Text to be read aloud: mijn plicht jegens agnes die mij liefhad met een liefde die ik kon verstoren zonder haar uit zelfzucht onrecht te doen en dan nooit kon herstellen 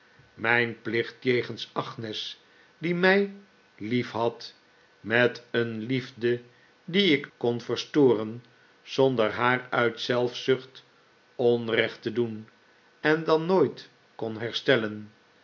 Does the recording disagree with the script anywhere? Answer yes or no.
no